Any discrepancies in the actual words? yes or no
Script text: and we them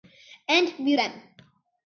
no